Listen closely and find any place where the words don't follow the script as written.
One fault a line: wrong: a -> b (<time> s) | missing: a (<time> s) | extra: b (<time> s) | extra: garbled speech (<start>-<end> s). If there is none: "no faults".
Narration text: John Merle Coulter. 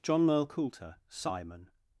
extra: simon (1.1 s)